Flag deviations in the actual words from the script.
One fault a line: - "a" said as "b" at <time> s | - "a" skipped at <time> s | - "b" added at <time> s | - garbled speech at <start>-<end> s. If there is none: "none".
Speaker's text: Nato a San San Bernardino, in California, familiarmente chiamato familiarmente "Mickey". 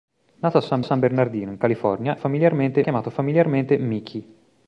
none